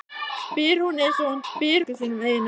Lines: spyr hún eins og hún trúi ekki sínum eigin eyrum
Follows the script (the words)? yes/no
no